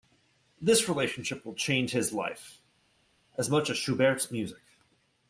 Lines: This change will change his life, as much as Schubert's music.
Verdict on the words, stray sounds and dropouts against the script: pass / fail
fail